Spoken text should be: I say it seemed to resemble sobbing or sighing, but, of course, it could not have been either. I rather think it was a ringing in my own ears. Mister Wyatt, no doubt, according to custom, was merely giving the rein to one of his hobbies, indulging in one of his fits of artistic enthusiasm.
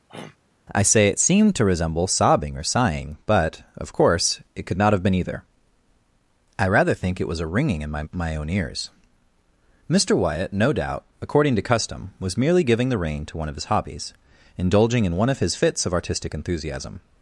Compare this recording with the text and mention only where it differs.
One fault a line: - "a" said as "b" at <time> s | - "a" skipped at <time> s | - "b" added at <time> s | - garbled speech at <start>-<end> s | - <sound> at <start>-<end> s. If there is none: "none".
- throat clearing at 0.1-0.4 s
- "my" added at 8.1 s